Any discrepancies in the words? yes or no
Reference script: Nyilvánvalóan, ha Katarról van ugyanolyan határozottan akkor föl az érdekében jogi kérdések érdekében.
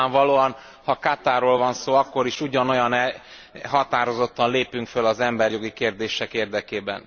yes